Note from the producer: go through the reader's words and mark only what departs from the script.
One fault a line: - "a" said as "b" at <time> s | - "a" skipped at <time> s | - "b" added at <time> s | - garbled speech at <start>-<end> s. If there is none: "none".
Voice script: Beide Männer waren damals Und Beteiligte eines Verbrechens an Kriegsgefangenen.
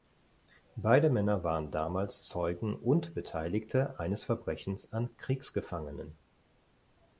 - "Zeugen" added at 2.2 s